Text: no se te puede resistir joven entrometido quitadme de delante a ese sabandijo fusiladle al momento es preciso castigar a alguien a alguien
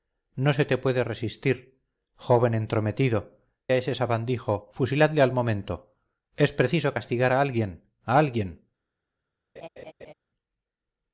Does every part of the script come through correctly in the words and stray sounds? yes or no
no